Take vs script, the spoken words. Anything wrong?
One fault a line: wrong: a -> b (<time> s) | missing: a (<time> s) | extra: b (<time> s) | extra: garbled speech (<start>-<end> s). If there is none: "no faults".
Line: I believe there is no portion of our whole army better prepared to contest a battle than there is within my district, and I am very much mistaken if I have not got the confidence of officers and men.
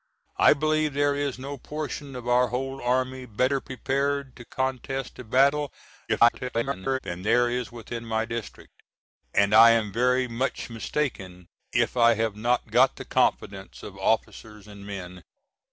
extra: garbled speech (6.1-7.0 s)